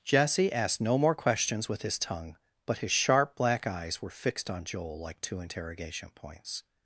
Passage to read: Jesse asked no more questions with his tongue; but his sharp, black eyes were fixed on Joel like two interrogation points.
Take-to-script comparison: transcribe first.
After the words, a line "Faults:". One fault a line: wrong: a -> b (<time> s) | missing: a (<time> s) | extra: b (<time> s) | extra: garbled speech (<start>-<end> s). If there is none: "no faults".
Jesse asked no more questions with his tongue; but his sharp, black eyes were fixed on Joel like two interrogation points.
Faults:
no faults